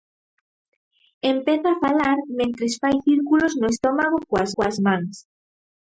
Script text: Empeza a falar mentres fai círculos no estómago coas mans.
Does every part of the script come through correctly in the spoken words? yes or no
no